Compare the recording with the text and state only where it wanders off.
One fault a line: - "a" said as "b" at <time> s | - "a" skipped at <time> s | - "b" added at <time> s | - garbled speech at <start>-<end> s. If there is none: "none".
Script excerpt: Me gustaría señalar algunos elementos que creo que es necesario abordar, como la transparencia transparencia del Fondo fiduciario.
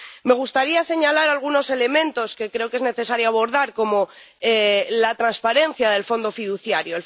- "transparencia" skipped at 5.9 s